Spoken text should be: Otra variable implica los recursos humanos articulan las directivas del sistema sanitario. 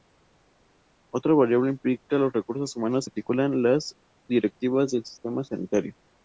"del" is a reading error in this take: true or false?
false